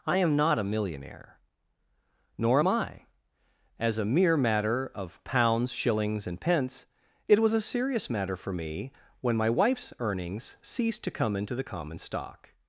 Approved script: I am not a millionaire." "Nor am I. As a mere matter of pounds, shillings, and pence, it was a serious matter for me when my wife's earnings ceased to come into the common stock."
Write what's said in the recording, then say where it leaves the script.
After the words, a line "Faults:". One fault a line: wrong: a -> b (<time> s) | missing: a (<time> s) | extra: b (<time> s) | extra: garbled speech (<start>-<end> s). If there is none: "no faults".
I am not a millionaire." "Nor am I. As a mere matter of pounds, shillings, and pence, it was a serious matter for me when my wife's earnings ceased to come into the common stock."
Faults:
no faults